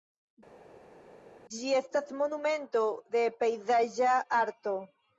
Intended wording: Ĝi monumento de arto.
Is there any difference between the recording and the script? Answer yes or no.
yes